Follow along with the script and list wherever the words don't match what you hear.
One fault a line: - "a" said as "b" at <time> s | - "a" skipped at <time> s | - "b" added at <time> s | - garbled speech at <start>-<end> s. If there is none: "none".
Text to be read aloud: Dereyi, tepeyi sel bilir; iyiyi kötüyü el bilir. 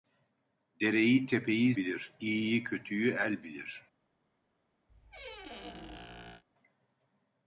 - "sel" skipped at 1.8 s